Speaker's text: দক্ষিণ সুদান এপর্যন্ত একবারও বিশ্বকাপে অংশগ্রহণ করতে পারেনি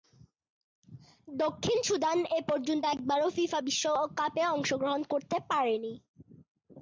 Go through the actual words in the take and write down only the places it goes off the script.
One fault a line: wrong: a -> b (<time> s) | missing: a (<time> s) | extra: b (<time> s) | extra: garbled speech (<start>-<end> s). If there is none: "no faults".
extra: ফিফা (3.3 s)